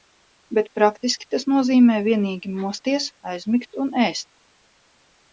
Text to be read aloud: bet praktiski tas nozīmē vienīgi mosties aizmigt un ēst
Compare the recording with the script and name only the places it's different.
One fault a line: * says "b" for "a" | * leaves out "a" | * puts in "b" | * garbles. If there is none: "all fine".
all fine